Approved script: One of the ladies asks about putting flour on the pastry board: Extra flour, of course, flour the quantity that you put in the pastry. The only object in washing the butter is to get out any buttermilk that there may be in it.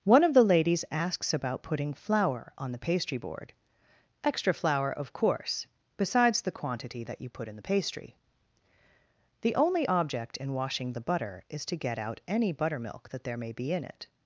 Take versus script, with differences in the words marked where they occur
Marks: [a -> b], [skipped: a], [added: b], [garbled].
One of the ladies asks about putting flour on the pastry board: Extra flour, of course, [flour -> besides] the quantity that you put in the pastry. The only object in washing the butter is to get out any buttermilk that there may be in it.